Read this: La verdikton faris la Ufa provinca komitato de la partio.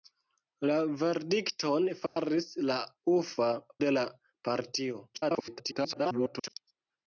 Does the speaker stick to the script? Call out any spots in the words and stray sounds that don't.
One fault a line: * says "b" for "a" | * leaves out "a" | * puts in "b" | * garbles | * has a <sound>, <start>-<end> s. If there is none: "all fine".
* has a dropout, 2.1-2.2 s
* leaves out "provinca komitato"
* garbles